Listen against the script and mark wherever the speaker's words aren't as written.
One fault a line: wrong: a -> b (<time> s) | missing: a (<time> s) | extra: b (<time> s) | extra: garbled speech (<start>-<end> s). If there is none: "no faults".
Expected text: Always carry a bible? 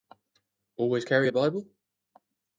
no faults